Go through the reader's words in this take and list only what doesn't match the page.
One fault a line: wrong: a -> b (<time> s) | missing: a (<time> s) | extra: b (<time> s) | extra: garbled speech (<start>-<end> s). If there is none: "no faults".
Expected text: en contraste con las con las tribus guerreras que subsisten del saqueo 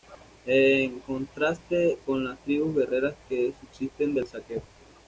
missing: con las (2.4 s)